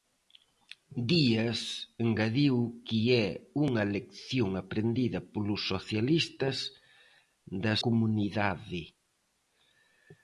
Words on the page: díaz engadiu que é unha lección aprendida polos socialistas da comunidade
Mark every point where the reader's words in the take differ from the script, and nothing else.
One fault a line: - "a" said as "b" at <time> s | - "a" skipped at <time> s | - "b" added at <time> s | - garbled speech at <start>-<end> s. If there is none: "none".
none